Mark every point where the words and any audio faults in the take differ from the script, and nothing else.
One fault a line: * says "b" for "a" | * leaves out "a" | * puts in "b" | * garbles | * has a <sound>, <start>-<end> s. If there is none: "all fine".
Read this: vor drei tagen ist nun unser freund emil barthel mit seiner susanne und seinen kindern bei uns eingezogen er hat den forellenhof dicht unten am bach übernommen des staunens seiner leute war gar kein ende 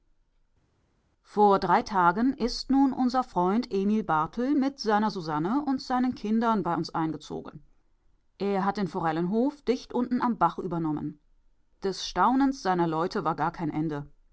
all fine